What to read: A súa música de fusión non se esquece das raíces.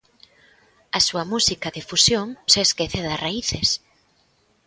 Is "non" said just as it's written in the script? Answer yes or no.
no